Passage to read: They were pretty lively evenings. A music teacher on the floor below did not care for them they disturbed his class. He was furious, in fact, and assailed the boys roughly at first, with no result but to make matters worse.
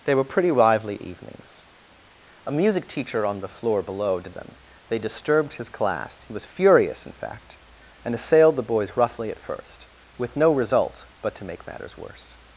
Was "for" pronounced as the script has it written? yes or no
no